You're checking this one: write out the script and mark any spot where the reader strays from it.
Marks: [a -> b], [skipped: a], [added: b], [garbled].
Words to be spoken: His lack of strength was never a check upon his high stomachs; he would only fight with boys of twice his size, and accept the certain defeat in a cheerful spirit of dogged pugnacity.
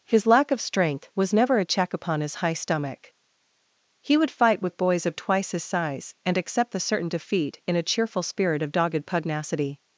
His lack of strength was never a check upon his high [stomachs; -> stomach] he would [skipped: only] fight with boys of twice his size, and accept the certain defeat in a cheerful spirit of dogged pugnacity.